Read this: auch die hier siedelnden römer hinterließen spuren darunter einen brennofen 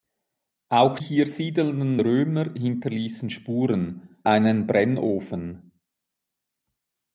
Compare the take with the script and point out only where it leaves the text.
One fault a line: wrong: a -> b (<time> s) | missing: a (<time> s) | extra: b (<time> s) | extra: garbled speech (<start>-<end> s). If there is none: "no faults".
missing: die (1.0 s)
missing: darunter (4.2 s)